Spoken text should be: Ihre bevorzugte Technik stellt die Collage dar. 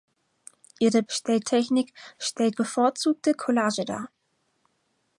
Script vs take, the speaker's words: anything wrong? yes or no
yes